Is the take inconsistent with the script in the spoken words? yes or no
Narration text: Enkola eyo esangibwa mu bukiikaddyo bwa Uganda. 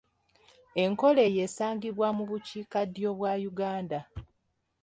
no